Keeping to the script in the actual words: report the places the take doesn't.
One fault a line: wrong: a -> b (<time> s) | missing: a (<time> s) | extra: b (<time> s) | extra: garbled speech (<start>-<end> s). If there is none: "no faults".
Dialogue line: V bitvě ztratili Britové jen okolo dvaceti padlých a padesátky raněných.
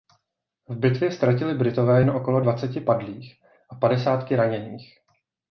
no faults